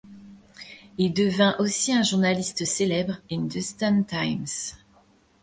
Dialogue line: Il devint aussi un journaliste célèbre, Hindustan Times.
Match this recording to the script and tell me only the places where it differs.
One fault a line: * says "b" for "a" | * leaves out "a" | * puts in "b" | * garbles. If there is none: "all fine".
all fine